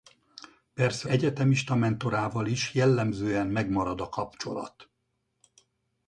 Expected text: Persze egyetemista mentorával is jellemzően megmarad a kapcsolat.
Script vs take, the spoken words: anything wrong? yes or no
no